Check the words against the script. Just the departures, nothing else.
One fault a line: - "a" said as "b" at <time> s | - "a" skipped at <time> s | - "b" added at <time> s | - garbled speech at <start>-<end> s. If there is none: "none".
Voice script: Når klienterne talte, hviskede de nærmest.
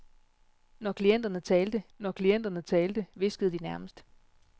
- "når klienterne talte" added at 2.0 s